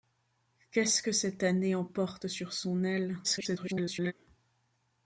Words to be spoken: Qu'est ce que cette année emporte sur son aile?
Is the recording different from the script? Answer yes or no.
yes